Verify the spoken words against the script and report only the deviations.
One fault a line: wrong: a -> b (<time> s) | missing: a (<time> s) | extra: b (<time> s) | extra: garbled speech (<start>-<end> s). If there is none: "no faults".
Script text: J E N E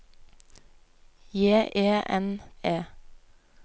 no faults